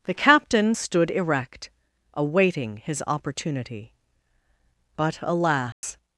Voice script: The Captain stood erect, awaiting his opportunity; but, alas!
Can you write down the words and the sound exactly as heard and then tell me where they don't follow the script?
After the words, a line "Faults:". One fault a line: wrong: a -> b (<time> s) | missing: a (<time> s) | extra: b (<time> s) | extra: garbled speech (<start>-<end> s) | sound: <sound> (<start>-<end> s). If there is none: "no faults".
The Captain stood erect, awaiting his opportunity; but, alas!
Faults:
sound: dropout (5.7-5.8 s)